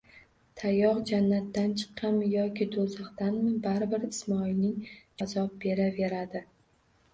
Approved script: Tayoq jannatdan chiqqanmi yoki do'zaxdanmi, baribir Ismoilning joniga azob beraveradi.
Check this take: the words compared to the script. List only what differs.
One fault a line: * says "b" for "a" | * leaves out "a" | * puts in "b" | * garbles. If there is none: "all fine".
* leaves out "joniga"